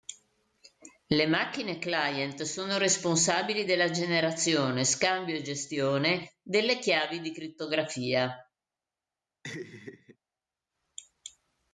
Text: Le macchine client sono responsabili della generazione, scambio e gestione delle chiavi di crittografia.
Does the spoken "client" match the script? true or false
true